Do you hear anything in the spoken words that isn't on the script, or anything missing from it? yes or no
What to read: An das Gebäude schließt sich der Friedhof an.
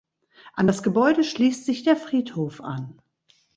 no